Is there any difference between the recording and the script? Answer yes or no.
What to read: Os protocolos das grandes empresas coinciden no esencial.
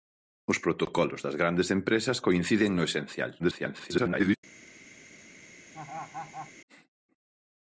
yes